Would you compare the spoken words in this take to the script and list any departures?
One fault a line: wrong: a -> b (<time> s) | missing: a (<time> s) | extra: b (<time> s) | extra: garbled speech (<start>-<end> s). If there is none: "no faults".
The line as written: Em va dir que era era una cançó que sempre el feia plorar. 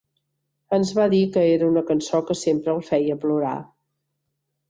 wrong: Em -> Ens (0.8 s)
missing: era (1.7 s)